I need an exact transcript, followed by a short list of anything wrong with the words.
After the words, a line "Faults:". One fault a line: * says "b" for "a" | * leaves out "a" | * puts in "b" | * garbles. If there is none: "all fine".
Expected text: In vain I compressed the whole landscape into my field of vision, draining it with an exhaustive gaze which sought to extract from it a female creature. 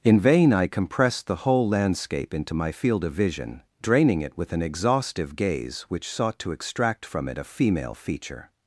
In vain I compressed the whole landscape into my field of vision, draining it with an exhaustive gaze which sought to extract from it a female feature.
Faults:
* says "feature" for "creature"